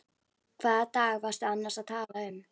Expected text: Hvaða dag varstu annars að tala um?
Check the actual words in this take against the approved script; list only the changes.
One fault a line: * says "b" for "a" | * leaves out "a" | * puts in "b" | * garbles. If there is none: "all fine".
all fine